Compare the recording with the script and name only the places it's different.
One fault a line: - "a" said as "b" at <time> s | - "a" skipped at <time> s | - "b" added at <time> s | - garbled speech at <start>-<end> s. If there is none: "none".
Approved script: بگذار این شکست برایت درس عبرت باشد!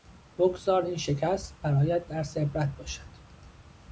none